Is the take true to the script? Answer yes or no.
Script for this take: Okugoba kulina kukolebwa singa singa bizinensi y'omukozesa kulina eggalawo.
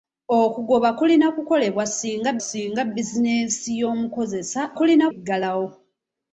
yes